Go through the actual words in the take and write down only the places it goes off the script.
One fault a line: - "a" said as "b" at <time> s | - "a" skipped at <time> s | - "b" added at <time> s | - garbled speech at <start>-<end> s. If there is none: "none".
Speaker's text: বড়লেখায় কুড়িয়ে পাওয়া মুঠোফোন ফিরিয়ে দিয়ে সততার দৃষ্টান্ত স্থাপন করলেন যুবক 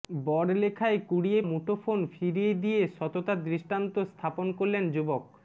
- "পাওয়া" skipped at 1.4 s